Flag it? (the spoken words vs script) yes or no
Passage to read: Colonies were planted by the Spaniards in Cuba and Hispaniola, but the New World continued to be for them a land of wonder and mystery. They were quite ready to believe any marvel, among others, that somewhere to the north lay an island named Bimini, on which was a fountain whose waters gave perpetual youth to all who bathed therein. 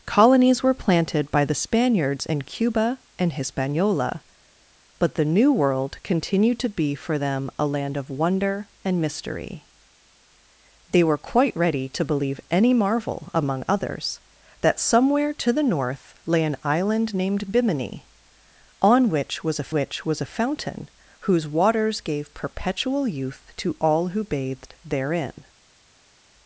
yes